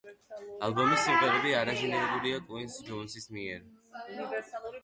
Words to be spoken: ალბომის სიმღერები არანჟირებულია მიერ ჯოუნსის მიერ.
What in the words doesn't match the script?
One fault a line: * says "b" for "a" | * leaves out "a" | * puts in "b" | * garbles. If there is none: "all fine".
* says "კუინსი" for "მიერ"